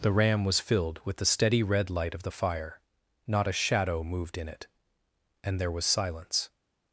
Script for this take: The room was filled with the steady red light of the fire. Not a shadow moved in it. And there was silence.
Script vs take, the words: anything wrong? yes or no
yes